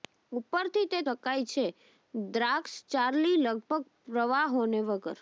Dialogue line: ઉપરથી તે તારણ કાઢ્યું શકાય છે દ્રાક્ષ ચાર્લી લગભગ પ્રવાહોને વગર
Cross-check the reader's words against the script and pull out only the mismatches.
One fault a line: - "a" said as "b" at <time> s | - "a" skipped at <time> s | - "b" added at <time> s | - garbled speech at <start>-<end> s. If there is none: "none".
- "તારણ કાઢ્યું" skipped at 1.0 s